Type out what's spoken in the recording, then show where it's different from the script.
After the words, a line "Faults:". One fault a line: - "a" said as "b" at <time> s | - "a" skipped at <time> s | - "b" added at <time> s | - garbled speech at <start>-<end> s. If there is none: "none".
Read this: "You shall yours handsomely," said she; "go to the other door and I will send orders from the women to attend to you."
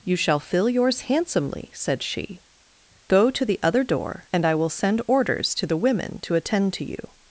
"You shall fill yours handsomely," said she; "go to the other door and I will send orders to the women to attend to you."
Faults:
- "fill" added at 0.4 s
- "from" said as "to" at 5.5 s